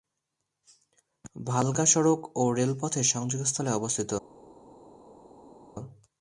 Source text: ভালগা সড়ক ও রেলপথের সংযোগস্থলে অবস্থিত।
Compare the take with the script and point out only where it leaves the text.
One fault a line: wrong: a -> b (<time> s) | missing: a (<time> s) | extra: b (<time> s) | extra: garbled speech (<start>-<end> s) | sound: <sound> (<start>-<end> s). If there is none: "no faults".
no faults